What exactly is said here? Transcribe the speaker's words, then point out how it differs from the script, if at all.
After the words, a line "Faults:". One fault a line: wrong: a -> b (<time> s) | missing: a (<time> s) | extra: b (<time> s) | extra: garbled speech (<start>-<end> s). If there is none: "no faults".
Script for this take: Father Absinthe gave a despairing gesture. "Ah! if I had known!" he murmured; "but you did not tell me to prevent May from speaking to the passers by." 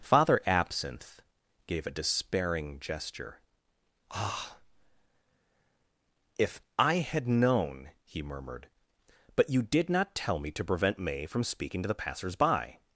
Father Absinthe gave a despairing gesture. "Ah! if I had known!" he murmured; "but you did not tell me to prevent May from speaking to the passers by."
Faults:
no faults